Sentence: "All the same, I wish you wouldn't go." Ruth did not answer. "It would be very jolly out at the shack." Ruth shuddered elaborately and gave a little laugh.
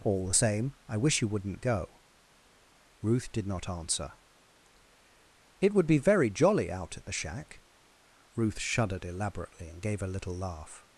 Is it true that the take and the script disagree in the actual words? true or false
false